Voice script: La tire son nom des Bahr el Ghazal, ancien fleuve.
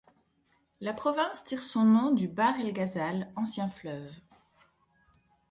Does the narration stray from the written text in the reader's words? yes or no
yes